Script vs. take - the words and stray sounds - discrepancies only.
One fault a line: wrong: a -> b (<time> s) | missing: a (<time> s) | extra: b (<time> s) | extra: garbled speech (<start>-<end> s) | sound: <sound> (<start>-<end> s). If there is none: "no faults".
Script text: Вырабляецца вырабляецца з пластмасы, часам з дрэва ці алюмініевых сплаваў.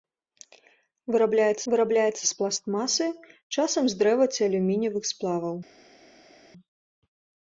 no faults